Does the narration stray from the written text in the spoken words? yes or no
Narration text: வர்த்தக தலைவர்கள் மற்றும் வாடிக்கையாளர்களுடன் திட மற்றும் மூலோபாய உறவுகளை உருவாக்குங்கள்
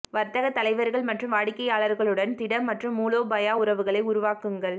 no